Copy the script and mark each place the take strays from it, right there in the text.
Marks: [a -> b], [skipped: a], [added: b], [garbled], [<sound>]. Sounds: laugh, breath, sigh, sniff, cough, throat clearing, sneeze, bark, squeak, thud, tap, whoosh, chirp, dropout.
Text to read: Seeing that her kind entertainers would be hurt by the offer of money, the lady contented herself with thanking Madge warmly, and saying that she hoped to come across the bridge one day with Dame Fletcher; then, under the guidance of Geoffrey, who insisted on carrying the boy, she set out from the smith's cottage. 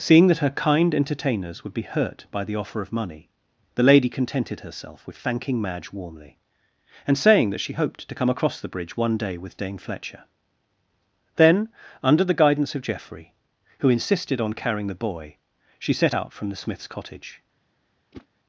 Seeing that her kind entertainers would be hurt by the offer of money, the lady contented herself with thanking Madge warmly, and saying that she hoped to come across the bridge one day with Dame Fletcher; then, under the guidance of Geoffrey, who insisted on carrying the boy, she set out from the smith's cottage. [whoosh]